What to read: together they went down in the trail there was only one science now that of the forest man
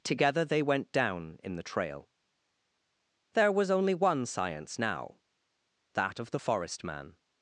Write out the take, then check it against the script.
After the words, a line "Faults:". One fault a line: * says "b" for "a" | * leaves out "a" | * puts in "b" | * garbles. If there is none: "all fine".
together they went down in the trail there was only one science now that of the forest man
Faults:
all fine